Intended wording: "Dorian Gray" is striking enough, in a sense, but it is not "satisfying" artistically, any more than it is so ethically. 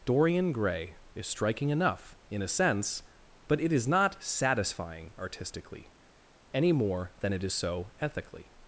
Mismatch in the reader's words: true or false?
false